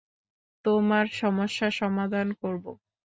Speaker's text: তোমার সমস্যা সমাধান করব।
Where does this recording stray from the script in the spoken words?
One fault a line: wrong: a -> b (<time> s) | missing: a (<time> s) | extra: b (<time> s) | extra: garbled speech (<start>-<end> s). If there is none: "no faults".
no faults